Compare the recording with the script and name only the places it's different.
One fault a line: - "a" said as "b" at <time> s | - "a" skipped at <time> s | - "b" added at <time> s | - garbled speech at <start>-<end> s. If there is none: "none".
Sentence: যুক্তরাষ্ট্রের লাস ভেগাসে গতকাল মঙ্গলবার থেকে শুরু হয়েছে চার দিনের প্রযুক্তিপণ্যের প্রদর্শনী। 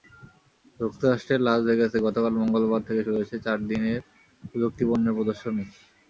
none